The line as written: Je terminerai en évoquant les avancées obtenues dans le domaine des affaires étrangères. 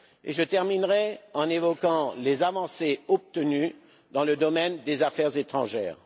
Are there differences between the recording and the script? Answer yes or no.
no